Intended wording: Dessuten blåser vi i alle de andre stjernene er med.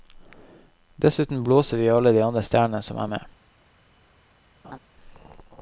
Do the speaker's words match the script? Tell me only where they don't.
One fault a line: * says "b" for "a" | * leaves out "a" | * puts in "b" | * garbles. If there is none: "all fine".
* puts in "som"